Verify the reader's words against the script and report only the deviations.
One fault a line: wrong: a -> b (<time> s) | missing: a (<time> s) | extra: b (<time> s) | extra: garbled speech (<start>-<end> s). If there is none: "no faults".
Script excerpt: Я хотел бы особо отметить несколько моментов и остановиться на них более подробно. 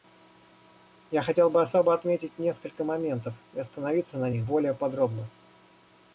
no faults